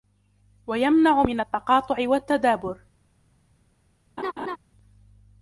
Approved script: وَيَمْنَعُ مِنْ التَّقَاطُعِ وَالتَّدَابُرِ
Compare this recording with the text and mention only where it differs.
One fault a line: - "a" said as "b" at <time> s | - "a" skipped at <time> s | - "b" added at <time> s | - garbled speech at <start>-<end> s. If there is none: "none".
none